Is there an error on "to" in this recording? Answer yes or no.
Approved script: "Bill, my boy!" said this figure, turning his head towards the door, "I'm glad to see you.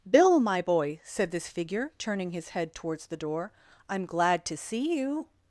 no